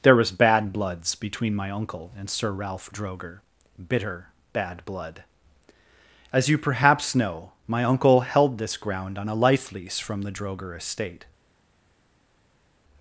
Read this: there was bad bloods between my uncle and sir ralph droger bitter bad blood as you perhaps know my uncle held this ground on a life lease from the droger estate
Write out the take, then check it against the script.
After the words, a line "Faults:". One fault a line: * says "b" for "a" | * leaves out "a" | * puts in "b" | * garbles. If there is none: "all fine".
there was bad bloods between my uncle and sir ralph droger bitter bad blood as you perhaps know my uncle held this ground on a life lease from the droger estate
Faults:
all fine